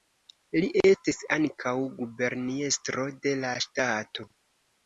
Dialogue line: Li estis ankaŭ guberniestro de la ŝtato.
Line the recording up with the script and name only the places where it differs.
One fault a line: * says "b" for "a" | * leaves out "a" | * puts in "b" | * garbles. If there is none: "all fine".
all fine